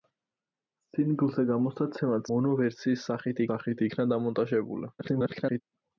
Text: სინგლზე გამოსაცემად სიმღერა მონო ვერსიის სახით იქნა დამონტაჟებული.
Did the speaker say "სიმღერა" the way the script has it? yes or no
no